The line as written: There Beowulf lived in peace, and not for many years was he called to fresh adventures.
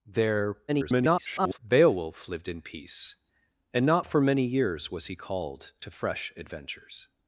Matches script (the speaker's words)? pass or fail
fail